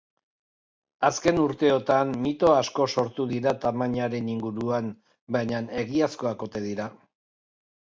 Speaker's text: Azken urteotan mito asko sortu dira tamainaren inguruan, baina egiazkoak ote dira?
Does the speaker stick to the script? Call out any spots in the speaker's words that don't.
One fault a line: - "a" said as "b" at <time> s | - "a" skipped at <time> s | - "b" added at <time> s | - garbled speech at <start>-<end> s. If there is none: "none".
none